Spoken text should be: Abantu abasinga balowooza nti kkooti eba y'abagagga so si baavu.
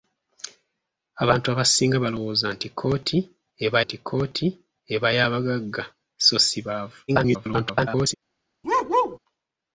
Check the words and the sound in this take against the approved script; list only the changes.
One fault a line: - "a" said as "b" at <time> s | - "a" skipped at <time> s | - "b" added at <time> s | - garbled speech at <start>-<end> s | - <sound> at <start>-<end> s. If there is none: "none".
- "nti kkooti eba" added at 3.8 s
- garbled speech at 7.1-8.1 s
- bark at 8.6-9.2 s